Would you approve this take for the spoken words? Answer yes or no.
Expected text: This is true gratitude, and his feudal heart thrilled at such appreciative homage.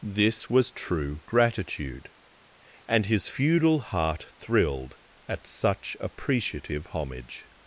no